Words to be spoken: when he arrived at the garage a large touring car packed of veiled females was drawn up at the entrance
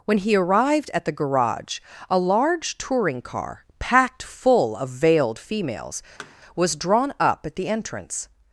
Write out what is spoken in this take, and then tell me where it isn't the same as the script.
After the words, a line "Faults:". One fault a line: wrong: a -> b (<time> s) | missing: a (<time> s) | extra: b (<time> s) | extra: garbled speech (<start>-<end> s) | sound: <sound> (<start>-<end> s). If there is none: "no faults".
when he arrived at the garage a large touring car packed full of veiled females was drawn up at the entrance
Faults:
extra: full (4.2 s)
sound: thud (6.2-6.3 s)